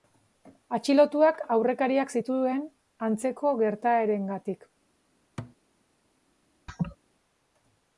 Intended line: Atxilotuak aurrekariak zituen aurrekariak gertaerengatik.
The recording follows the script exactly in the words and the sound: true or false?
false